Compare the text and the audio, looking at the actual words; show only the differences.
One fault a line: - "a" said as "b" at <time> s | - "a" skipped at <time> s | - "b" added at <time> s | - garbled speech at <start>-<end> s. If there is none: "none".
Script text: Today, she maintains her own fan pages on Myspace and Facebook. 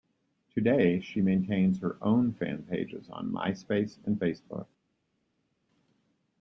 none